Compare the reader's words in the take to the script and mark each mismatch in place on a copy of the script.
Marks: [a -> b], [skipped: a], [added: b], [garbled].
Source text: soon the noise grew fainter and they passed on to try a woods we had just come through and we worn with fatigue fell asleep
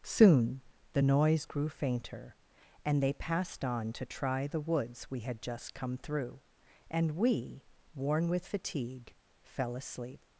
soon the noise grew fainter and they passed on to try [a -> the] woods we had just come through and we worn with fatigue fell asleep